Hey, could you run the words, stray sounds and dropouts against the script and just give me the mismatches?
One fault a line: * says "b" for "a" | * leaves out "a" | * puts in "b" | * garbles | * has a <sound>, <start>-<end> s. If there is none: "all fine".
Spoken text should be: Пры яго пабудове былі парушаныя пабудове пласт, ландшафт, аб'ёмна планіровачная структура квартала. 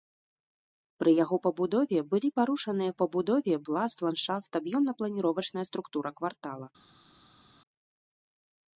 all fine